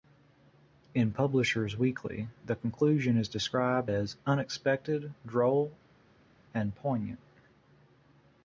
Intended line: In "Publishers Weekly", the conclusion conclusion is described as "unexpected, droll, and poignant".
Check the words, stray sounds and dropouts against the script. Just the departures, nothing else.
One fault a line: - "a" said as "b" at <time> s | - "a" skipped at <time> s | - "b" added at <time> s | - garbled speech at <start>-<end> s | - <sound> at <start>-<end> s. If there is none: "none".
- "conclusion" skipped at 3.2 s